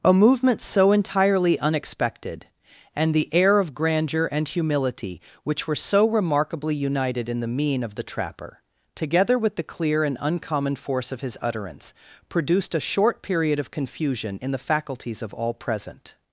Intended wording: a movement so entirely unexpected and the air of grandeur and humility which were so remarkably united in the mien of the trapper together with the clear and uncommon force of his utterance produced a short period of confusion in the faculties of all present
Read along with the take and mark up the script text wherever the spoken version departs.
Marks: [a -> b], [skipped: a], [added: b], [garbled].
a movement so entirely unexpected and the air of grandeur and humility which were so remarkably united in the mien of the trapper together with the clear and uncommon force of his utterance produced a short period of confusion in the faculties of all present